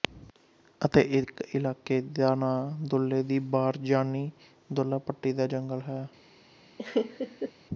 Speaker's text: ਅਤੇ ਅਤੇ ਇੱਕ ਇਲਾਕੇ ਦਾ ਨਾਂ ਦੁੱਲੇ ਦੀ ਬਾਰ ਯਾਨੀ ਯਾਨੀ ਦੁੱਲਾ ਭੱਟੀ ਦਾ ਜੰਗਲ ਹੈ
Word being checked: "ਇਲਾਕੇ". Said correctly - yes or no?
yes